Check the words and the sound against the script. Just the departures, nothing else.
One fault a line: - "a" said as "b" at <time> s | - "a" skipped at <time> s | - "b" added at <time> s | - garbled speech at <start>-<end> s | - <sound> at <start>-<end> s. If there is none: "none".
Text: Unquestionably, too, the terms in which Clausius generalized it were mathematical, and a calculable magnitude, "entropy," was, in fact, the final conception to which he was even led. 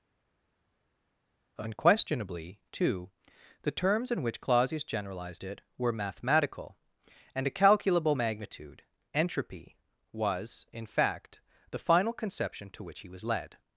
- "even" skipped at 13.2 s